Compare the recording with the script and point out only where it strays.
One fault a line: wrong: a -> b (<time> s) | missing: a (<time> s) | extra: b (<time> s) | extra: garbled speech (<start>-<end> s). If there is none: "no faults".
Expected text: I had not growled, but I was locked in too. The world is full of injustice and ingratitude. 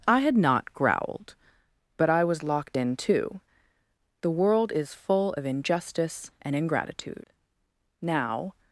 extra: Now (8.0 s)